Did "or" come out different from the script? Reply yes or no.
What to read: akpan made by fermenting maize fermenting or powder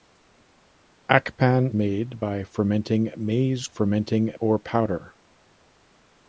no